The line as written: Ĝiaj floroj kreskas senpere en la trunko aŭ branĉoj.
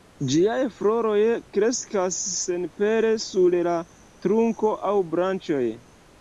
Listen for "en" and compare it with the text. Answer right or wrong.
wrong